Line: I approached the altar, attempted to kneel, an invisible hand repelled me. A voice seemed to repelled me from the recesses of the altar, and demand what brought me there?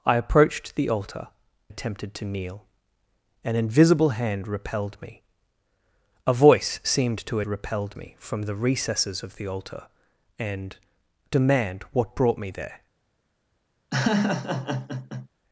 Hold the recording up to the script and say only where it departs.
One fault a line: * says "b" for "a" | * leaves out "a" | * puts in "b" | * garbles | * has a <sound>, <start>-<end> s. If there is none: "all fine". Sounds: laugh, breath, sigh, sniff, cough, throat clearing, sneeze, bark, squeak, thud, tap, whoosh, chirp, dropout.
* has a laugh, 13.9-15.3 s